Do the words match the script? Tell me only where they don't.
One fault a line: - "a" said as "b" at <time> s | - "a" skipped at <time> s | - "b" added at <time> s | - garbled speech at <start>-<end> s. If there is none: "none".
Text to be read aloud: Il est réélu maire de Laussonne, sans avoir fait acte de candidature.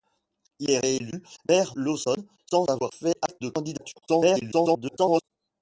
- "de" skipped at 1.8 s
- garbled speech at 4.1-5.2 s